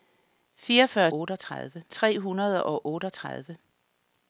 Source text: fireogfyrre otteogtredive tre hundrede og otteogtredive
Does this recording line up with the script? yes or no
yes